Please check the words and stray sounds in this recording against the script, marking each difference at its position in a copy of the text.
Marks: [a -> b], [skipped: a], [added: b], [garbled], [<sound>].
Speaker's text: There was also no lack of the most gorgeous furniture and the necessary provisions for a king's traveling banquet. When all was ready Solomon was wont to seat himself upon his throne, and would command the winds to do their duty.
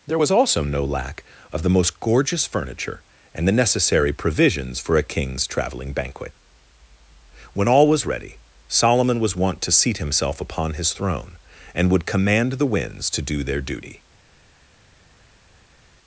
There was also no lack of the most gorgeous furniture and the necessary provisions for a king's traveling banquet. When all was ready Solomon was wont to seat himself upon his throne, and would command the winds to do their duty.